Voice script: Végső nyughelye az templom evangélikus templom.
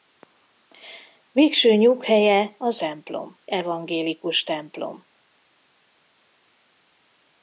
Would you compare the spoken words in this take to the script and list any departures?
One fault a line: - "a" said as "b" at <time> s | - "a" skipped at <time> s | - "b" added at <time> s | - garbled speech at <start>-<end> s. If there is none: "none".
none